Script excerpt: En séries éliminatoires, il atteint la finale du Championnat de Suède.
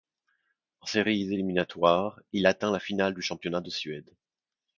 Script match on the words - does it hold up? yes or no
yes